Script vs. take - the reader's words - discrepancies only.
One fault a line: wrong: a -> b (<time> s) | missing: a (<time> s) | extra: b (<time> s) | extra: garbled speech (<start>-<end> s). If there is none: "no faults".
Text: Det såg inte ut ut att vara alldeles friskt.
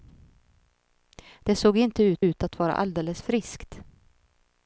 no faults